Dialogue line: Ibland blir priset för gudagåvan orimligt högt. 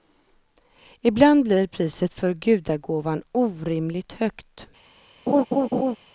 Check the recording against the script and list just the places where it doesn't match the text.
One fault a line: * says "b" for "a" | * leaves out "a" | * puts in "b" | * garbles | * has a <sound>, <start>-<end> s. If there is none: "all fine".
* has a laugh, 5.3-6.0 s